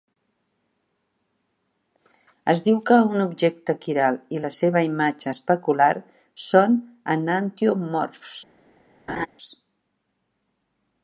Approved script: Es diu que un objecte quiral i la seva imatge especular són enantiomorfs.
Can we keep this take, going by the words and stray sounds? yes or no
no